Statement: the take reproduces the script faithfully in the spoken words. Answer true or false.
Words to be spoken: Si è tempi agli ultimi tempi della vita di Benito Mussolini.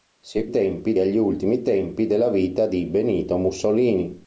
true